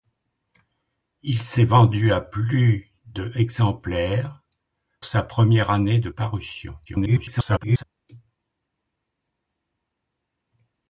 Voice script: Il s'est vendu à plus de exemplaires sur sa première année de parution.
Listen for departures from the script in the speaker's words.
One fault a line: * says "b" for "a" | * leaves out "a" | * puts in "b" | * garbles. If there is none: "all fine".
* leaves out "sur"
* garbles